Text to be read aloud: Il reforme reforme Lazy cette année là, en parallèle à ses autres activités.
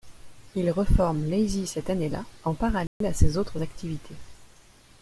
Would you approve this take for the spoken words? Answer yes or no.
no